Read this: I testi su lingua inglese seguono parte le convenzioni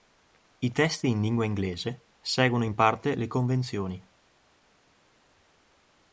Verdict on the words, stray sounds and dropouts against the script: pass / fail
fail